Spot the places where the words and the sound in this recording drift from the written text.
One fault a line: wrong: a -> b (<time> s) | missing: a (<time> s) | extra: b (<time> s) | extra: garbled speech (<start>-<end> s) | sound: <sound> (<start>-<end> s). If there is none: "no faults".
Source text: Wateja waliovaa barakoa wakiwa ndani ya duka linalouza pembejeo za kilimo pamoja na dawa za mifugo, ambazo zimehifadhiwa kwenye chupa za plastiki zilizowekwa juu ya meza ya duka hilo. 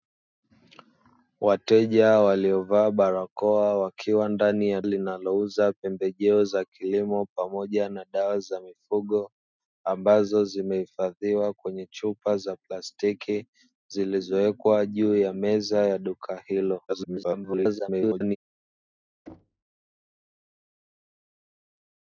missing: duka (4.8 s)
extra: garbled speech (16.9-18.4 s)
sound: thud (19.3-19.6 s)